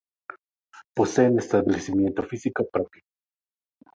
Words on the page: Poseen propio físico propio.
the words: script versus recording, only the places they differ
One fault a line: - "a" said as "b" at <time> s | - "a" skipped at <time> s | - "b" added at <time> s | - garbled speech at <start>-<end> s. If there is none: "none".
- "propio" said as "establecimiento" at 1.4 s